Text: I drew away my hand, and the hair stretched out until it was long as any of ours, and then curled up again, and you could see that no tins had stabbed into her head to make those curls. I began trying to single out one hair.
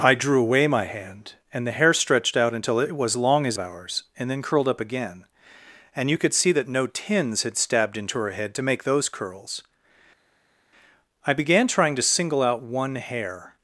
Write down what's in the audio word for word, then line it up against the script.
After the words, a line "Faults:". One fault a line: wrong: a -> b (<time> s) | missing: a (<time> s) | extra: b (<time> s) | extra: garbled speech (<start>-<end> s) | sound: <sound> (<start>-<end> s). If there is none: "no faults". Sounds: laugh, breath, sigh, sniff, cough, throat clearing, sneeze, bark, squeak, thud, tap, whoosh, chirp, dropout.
I drew away my hand, and the hair stretched out until it was long as ours, and then curled up again, and you could see that no tins had stabbed into her head to make those curls. I began trying to single out one hair.
Faults:
missing: any of (3.6 s)